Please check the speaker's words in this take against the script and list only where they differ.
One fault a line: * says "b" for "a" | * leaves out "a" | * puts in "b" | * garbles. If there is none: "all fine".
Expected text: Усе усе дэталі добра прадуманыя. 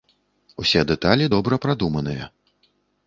* leaves out "усе"